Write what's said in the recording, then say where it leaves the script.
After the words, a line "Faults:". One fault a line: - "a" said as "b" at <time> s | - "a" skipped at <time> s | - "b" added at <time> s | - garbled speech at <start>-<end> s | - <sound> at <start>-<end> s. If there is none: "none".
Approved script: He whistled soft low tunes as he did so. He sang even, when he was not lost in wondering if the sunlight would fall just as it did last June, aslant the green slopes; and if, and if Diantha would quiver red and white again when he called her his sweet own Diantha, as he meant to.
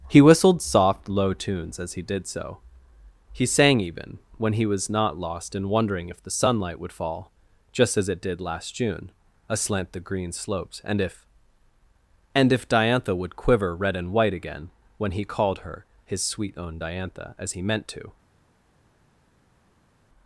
He whistled soft low tunes as he did so. He sang even, when he was not lost in wondering if the sunlight would fall just as it did last June, aslant the green slopes; and if, and if Diantha would quiver red and white again when he called her his sweet own Diantha, as he meant to.
Faults:
none